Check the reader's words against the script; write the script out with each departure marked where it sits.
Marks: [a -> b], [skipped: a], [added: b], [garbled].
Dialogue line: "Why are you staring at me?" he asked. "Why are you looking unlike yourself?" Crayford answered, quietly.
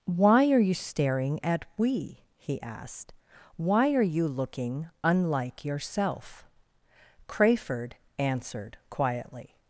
"Why are you staring at [me?" -> we] he asked. "Why are you looking unlike yourself?" Crayford answered, quietly.